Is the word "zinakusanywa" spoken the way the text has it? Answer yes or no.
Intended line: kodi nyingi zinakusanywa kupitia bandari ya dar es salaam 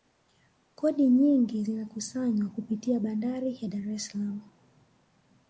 yes